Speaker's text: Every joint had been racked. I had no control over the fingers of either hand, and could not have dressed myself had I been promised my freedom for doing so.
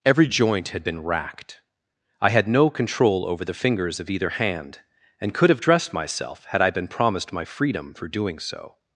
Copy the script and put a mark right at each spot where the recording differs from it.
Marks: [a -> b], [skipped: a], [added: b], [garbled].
Every joint had been racked. I had no control over the fingers of either hand, and could [skipped: not] have dressed myself had I been promised my freedom for doing so.